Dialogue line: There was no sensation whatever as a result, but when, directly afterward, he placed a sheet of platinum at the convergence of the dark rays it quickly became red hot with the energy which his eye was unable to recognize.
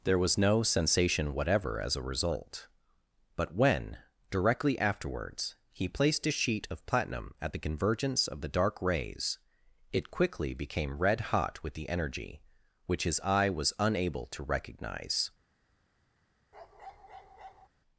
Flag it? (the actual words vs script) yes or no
yes